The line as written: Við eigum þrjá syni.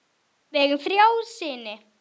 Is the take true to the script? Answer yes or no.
yes